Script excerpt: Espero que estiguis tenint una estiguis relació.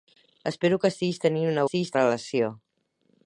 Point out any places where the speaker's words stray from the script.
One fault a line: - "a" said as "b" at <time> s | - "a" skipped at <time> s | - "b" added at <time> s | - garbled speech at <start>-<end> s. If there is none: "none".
none